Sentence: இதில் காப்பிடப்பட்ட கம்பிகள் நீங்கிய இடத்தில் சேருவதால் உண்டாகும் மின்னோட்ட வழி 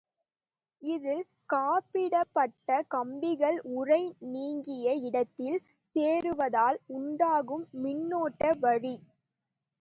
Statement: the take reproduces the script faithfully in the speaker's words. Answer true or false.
false